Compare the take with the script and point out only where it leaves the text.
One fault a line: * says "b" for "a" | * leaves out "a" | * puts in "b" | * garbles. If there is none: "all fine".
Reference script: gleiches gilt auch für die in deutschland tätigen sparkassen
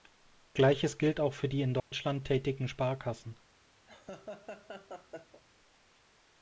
all fine